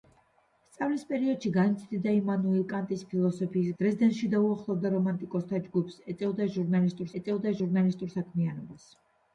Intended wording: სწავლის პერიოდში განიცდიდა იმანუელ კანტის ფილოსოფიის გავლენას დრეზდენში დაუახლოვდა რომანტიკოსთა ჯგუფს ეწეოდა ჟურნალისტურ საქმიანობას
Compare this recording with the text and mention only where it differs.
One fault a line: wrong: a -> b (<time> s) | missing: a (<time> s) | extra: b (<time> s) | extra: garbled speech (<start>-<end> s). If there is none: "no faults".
missing: გავლენას (3.7 s)
extra: ეწეოდა ჟურნალისტურ (7.2 s)